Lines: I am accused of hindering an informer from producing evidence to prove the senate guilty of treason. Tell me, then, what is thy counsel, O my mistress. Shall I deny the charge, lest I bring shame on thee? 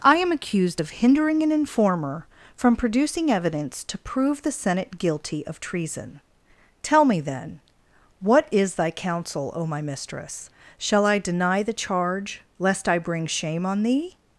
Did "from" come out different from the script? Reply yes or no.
no